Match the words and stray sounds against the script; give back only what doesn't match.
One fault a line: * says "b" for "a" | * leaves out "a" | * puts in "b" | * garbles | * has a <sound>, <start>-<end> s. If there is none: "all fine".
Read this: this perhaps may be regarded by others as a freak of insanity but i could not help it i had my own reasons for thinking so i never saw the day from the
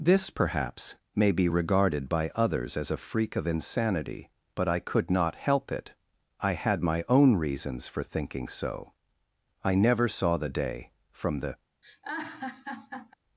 * has a laugh, 11.8-13.1 s